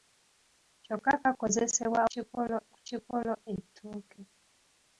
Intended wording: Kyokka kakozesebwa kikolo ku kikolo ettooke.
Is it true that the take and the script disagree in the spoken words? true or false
false